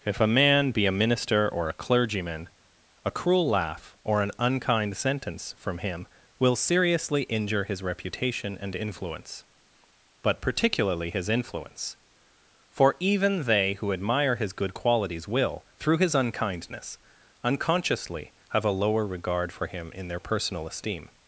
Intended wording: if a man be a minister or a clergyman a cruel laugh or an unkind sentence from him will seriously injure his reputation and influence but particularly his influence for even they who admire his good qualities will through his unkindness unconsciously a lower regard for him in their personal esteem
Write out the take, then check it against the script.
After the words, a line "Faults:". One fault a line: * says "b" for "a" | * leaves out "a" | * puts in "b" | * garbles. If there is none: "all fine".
if a man be a minister or a clergyman a cruel laugh or an unkind sentence from him will seriously injure his reputation and influence but particularly his influence for even they who admire his good qualities will through his unkindness unconsciously have a lower regard for him in their personal esteem
Faults:
* puts in "have"